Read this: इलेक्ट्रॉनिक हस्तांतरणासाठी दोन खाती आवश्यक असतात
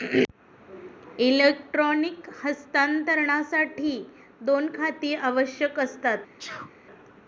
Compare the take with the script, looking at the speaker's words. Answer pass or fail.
pass